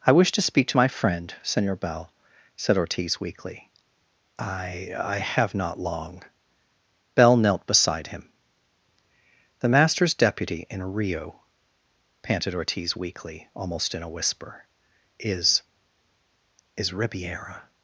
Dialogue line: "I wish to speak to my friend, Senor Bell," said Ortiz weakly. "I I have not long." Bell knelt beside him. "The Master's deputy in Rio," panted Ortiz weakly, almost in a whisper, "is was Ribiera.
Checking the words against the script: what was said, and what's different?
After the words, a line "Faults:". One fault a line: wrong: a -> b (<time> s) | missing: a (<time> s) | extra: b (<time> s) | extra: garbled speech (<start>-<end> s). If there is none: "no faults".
"I wish to speak to my friend, Senor Bell," said Ortiz weakly. "I I have not long." Bell knelt beside him. "The Master's deputy in Rio," panted Ortiz weakly, almost in a whisper, "is is Ribiera.
Faults:
wrong: was -> is (16.8 s)